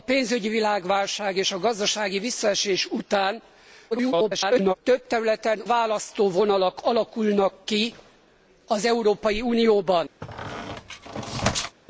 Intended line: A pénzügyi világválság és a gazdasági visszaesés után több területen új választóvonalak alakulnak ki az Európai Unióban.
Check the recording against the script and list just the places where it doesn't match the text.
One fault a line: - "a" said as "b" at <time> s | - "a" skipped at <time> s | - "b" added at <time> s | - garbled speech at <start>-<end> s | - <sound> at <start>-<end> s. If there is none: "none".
- garbled speech at 3.9-4.7 s
- "új" skipped at 5.6 s
- squeak at 10.2-11.8 s